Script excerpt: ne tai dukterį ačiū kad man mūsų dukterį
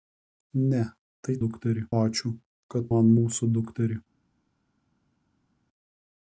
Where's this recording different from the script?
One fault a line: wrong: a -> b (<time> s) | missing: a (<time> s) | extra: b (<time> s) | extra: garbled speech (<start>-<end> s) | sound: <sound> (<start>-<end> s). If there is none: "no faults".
no faults